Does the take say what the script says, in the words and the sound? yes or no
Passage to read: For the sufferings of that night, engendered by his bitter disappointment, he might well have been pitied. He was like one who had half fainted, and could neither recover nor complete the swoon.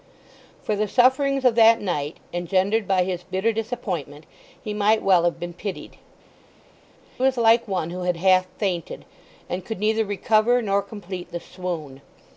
no